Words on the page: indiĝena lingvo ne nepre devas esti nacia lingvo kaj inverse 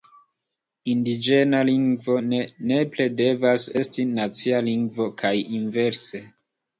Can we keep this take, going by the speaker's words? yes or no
yes